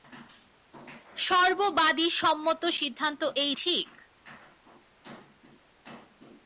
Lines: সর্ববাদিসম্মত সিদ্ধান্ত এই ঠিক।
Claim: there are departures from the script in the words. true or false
false